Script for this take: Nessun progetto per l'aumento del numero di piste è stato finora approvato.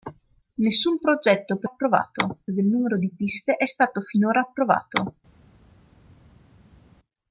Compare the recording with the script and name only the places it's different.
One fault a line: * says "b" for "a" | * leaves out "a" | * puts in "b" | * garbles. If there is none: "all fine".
* says "approvato" for "l'aumento"